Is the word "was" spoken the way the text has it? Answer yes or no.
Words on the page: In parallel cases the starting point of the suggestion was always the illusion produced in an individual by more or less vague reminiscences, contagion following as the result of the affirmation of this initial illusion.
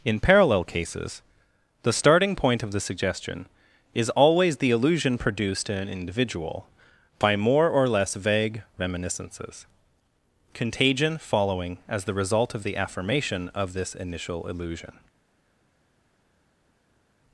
no